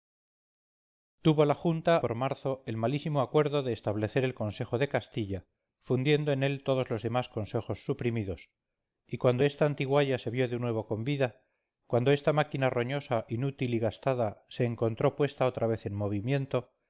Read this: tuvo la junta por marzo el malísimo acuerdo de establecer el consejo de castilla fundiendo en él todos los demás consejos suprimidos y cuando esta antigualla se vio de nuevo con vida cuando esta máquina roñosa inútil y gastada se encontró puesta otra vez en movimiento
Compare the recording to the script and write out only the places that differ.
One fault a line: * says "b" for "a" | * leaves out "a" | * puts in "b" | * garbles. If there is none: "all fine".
all fine